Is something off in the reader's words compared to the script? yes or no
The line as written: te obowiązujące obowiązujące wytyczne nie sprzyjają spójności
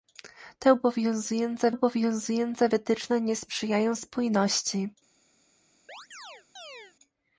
no